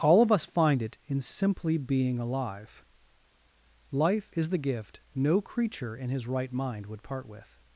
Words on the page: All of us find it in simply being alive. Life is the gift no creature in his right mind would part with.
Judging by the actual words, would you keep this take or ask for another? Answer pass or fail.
pass